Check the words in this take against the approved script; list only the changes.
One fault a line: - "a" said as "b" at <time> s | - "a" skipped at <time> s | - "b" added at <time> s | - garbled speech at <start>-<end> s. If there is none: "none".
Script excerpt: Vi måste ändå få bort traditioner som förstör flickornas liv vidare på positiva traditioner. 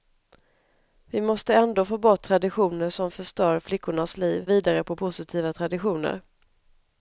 none